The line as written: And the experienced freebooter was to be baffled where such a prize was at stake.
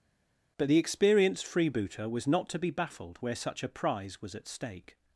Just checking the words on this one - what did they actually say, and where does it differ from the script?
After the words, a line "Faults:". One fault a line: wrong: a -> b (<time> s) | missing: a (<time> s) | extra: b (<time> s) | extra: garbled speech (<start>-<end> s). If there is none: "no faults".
But the experienced freebooter was not to be baffled where such a prize was at stake.
Faults:
wrong: And -> But (0.6 s)
extra: not (2.3 s)